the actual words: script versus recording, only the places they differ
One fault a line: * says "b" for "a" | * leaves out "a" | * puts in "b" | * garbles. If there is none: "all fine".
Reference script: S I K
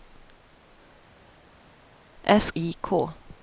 all fine